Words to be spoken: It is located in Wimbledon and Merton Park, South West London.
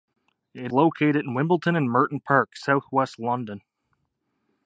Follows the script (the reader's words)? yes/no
no